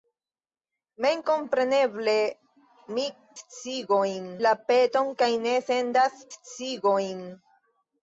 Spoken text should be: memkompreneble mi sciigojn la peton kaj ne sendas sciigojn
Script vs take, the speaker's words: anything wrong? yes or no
no